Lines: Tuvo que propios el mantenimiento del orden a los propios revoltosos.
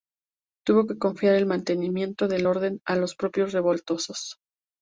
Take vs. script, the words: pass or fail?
fail